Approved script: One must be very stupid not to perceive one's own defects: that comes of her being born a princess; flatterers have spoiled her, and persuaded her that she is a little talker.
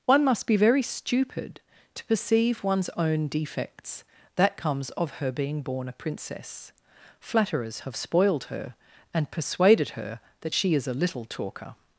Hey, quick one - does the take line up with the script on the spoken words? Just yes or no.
no